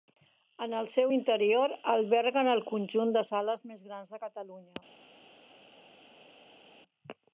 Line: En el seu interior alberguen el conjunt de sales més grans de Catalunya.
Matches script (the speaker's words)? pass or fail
pass